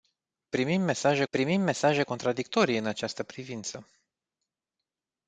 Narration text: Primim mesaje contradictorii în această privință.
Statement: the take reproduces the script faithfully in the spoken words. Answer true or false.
false